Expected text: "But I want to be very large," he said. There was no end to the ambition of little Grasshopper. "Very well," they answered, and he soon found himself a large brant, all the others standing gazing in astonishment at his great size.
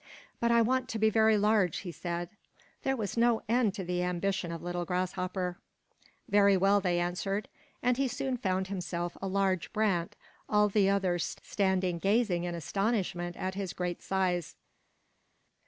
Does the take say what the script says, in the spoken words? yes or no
yes